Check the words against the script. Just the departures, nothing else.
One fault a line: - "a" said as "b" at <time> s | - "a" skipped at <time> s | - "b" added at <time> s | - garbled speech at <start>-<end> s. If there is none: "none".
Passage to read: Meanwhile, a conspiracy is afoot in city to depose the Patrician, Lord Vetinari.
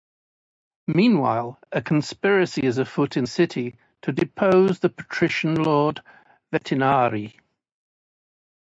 none